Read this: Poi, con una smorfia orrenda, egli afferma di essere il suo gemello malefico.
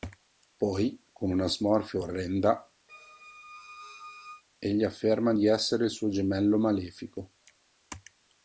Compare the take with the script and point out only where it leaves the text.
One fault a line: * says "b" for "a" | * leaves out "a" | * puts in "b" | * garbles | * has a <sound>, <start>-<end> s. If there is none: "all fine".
* has a squeak, 2.9-4.4 s